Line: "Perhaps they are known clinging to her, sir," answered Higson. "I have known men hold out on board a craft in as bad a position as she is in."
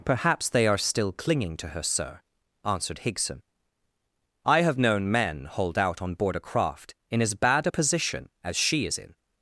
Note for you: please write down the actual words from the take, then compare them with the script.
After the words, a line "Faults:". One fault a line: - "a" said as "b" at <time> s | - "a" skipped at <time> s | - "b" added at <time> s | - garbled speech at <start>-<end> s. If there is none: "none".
"Perhaps they are still clinging to her, sir," answered Higson. "I have known men hold out on board a craft in as bad a position as she is in."
Faults:
- "known" said as "still" at 0.8 s